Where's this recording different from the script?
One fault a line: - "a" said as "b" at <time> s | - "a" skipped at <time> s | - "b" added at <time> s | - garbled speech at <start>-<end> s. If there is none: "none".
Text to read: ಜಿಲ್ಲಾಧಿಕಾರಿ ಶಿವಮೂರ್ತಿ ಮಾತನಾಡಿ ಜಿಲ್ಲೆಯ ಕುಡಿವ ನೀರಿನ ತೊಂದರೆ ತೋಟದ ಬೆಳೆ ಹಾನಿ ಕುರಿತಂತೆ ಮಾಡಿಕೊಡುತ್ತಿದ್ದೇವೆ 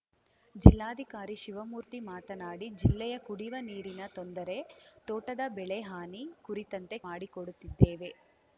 none